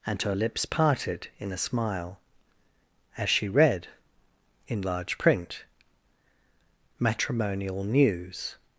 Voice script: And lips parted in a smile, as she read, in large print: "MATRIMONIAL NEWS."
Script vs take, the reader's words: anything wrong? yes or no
yes